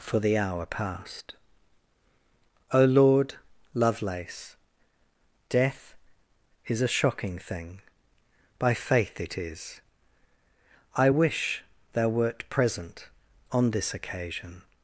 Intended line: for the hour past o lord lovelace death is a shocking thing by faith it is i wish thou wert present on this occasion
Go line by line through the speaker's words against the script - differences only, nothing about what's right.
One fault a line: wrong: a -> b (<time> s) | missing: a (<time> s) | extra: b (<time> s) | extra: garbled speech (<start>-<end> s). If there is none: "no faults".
no faults